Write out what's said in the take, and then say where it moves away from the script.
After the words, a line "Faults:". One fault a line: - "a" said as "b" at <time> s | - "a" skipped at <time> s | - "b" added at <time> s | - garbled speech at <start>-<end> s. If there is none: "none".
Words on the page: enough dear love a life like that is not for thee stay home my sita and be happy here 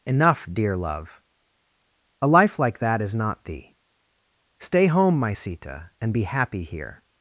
enough dear love a life like that is not thee stay home my sita and be happy here
Faults:
- "for" skipped at 3.4 s